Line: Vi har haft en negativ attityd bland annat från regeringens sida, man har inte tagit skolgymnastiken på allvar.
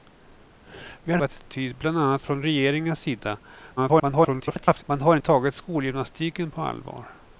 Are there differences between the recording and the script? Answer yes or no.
yes